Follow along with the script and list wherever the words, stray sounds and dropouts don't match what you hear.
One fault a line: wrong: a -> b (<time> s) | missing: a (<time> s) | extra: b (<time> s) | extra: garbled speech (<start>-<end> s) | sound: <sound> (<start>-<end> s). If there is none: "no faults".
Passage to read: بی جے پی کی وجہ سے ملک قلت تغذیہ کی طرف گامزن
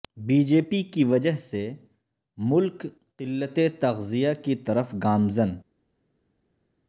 no faults